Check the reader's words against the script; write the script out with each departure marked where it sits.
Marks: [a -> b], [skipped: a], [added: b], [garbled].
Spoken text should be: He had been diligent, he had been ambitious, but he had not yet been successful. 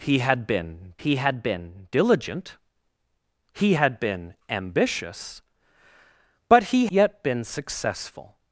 He had been [added: he had been] diligent, he had been ambitious, but he [skipped: had not] yet been successful.